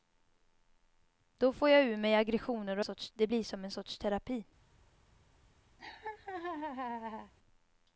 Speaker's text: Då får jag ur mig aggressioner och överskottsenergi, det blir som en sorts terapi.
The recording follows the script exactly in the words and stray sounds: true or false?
false